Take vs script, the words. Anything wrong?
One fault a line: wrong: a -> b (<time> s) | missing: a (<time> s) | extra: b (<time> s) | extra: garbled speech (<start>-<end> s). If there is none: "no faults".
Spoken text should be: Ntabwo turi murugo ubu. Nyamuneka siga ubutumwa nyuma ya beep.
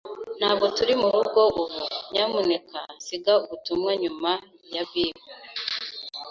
no faults